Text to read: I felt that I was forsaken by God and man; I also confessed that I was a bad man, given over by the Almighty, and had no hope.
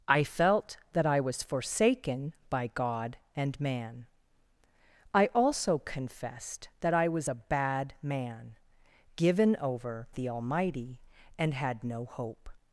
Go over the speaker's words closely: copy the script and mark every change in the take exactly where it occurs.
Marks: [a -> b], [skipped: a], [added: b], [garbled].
I felt that I was forsaken by God and man; I also confessed that I was a bad man, given over [skipped: by] the Almighty, and had no hope.